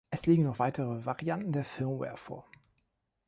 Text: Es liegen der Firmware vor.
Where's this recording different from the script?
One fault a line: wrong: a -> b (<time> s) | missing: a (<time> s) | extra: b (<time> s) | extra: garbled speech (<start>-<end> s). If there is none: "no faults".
extra: noch weitere Varianten (0.4 s)